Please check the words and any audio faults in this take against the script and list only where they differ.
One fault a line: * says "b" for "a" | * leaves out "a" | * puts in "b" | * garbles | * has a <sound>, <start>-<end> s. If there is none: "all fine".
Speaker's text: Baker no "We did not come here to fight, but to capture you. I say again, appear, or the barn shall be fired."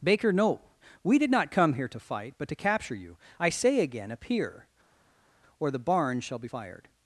all fine